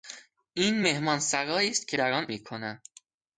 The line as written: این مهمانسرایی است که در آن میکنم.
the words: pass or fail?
pass